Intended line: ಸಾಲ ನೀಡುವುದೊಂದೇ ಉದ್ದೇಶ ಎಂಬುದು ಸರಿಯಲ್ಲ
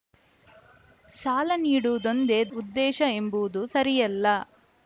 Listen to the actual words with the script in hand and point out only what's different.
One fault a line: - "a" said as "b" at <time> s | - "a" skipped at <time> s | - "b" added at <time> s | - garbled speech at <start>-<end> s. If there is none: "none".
none